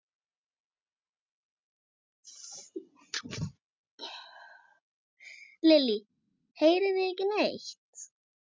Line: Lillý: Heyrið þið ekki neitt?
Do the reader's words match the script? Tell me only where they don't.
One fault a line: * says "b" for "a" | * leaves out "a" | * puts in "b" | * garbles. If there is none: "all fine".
all fine